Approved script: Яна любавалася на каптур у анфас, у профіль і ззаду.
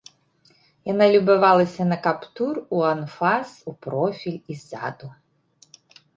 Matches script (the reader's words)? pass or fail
pass